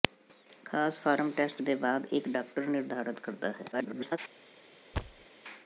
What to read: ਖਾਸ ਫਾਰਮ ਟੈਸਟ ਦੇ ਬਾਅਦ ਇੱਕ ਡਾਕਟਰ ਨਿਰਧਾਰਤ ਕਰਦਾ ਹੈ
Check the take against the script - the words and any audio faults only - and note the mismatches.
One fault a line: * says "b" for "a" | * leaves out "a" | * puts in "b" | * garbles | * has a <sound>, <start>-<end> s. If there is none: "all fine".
* garbles
* has a thud, 4.9-5.3 s